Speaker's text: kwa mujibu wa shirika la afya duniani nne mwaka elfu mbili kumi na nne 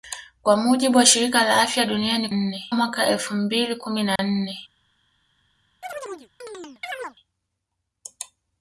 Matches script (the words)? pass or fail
pass